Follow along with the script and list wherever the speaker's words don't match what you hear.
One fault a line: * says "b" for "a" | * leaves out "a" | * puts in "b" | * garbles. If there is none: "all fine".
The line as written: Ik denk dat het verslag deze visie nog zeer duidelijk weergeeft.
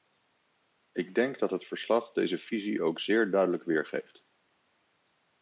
* says "ook" for "nog"